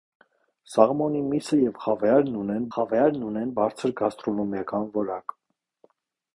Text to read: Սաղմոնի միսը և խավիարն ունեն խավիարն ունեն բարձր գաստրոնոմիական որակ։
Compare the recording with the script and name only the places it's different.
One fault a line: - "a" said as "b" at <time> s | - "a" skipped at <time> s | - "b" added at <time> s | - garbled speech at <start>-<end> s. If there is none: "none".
none